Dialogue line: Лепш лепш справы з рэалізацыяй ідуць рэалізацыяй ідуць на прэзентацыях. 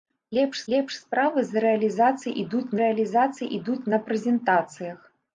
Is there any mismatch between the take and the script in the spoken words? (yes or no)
no